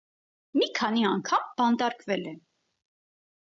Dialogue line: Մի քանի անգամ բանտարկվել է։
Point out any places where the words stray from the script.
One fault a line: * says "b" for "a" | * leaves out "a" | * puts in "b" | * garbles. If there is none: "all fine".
all fine